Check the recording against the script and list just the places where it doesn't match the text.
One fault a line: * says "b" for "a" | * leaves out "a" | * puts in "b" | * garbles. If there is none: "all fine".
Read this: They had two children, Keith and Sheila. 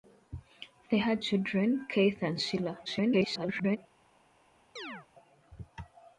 * leaves out "two"
* garbles